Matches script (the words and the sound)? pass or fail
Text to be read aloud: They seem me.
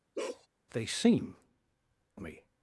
fail